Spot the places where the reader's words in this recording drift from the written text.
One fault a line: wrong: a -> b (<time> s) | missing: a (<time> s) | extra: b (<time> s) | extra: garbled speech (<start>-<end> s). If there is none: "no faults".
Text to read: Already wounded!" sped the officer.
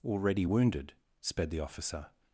no faults